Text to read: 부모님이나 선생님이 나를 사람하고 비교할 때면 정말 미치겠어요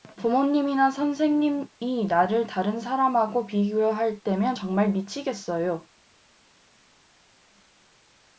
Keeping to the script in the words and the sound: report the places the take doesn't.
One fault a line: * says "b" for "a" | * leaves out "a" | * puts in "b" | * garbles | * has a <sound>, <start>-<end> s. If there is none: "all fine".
* puts in "다른"